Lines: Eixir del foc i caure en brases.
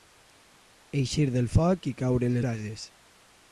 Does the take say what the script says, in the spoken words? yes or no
yes